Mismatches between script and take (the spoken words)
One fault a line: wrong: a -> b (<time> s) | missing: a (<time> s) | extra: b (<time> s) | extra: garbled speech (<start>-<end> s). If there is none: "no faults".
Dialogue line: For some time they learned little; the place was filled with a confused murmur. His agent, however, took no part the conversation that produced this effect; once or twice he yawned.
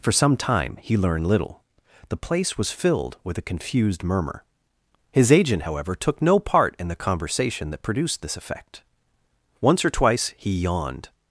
wrong: they -> he (0.8 s)
extra: in (6.8 s)